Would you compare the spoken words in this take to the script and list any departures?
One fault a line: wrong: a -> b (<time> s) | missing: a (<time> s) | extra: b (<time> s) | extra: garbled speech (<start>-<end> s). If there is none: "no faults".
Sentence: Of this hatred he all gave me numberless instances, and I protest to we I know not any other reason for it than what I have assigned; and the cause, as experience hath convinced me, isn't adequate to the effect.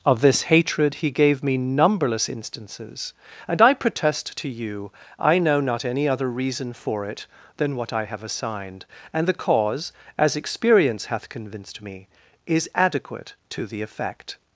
missing: all (1.1 s)
wrong: we -> you (4.5 s)
wrong: isn't -> is (12.5 s)